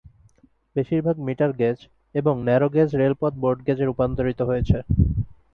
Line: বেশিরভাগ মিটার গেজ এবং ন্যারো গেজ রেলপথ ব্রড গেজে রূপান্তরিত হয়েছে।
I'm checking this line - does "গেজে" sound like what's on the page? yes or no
yes